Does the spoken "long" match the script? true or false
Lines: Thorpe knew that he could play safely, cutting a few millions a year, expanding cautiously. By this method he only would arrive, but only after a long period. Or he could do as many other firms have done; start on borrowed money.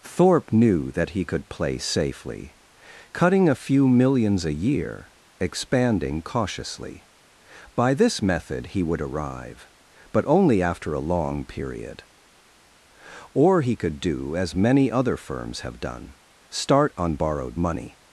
true